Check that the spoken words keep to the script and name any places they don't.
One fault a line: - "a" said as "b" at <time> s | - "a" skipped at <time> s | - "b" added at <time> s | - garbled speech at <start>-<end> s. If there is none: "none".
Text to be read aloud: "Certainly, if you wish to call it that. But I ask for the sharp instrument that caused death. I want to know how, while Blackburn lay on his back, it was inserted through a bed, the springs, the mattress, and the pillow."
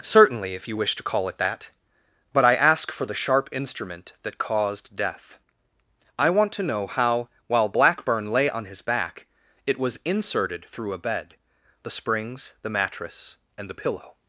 none